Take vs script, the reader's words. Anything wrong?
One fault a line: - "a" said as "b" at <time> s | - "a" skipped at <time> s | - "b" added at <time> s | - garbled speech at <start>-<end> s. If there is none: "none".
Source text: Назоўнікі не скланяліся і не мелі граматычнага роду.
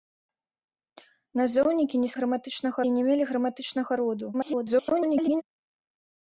- "скланяліся" said as "граматычнага" at 2.2 s
- garbled speech at 4.3-5.4 s